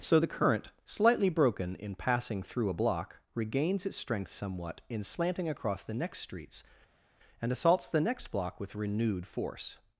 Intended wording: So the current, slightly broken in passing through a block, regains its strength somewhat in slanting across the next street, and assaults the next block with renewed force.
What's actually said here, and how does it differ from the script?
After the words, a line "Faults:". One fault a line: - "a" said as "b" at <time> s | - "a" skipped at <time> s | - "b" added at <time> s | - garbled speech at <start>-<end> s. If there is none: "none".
So the current, slightly broken in passing through a block, regains its strength somewhat in slanting across the next streets, and assaults the next block with renewed force.
Faults:
- "street" said as "streets" at 6.2 s